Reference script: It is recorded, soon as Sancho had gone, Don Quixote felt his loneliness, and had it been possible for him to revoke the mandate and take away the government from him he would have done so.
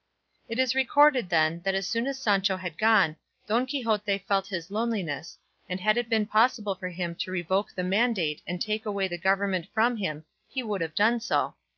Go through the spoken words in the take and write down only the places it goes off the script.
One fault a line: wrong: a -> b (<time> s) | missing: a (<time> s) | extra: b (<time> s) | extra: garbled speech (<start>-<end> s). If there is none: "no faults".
extra: then that as (1.3 s)